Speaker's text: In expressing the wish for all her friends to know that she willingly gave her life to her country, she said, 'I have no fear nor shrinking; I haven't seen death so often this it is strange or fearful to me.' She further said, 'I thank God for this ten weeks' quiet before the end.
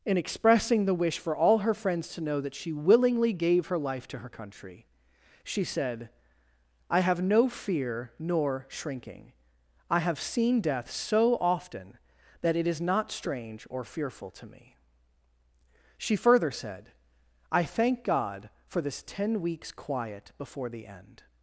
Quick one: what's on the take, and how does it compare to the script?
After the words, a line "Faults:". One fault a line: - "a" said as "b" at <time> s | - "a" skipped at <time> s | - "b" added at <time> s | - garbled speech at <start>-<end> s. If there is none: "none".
In expressing the wish for all her friends to know that she willingly gave her life to her country, she said, 'I have no fear nor shrinking; I have seen death so often that it is not strange or fearful to me.' She further said, 'I thank God for this ten weeks' quiet before the end.
Faults:
- "haven't" said as "have" at 10.0 s
- "this" said as "that" at 12.4 s
- "not" added at 12.8 s